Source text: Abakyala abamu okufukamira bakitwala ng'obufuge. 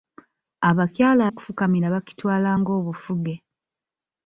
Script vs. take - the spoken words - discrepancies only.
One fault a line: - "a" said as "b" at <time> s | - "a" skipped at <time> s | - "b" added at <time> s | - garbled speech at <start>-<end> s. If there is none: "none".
- "abamu" skipped at 1.2 s